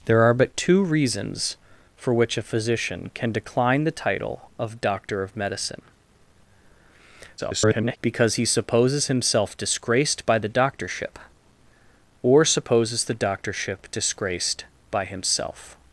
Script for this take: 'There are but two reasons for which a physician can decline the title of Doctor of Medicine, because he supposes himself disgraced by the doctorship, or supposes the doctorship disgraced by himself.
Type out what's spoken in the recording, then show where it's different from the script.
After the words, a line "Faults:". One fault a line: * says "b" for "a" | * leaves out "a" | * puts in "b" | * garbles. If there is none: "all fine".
'There are but two reasons for which a physician can decline the title of Doctor of Medicine, [garbled] because he supposes himself disgraced by the doctorship, or supposes the doctorship disgraced by himself.
Faults:
* garbles